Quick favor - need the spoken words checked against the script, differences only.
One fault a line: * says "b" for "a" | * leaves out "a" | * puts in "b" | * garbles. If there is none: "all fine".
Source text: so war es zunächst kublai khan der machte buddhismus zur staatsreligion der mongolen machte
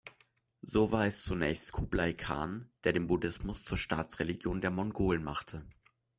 * says "den" for "machte"